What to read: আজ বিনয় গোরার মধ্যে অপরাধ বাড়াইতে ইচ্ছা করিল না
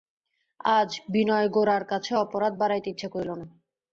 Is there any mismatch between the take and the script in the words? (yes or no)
yes